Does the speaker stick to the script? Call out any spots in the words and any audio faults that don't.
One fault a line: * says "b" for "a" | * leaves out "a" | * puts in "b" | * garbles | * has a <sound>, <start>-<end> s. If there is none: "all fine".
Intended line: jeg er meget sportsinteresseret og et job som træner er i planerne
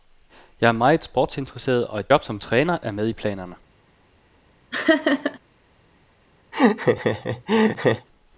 * puts in "med"
* has a laugh, 4.7-5.4 s
* has a laugh, 6.5-8.1 s